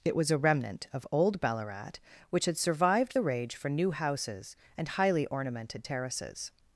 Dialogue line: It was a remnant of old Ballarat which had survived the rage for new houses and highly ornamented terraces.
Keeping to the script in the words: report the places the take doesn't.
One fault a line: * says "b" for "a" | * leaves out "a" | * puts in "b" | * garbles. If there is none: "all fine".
all fine